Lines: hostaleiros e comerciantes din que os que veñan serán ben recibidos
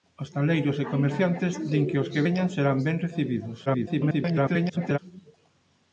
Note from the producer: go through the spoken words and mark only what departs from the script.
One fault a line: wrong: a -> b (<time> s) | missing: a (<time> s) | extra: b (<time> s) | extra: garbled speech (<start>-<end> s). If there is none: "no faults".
extra: garbled speech (3.7-5.0 s)